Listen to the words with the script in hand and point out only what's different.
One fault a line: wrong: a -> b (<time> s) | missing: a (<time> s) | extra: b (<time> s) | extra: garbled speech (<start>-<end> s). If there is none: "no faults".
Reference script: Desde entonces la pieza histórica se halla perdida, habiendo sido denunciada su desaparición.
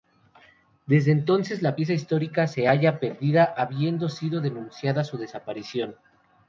no faults